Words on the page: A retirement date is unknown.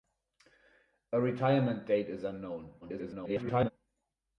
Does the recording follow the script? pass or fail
fail